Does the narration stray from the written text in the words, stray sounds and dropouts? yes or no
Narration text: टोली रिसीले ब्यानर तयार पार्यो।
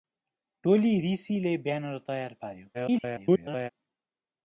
yes